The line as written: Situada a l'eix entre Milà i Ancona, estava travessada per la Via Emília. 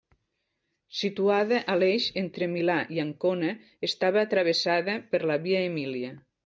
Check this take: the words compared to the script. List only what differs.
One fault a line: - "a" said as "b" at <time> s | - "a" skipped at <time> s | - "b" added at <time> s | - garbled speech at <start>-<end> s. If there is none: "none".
none